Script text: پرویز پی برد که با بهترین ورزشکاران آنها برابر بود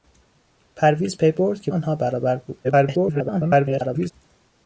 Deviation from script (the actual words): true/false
true